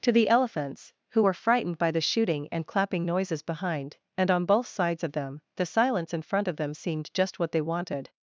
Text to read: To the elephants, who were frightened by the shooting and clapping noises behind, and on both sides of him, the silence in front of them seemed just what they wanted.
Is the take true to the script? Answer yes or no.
no